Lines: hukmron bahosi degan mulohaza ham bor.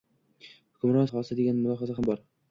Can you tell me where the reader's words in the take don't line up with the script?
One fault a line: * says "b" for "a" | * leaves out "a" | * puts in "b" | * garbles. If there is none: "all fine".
all fine